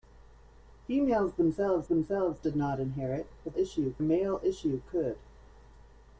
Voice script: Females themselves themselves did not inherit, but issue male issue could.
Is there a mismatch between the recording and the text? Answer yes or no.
no